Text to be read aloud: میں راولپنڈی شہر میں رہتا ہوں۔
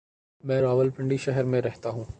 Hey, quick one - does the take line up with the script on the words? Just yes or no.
yes